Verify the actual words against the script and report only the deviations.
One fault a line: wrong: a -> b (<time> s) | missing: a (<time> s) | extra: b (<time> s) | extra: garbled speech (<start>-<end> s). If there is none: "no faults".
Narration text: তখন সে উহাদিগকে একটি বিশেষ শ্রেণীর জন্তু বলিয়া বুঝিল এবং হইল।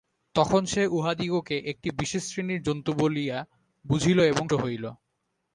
no faults